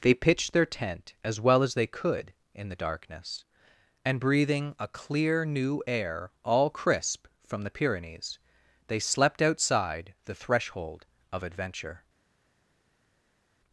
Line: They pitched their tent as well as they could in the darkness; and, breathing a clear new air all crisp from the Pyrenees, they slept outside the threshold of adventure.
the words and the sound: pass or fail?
pass